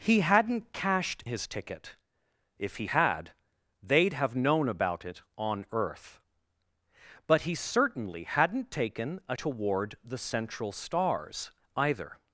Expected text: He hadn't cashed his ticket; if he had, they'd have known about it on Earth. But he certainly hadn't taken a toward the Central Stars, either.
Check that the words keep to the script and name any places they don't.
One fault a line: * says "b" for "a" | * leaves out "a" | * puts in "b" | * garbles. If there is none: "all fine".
all fine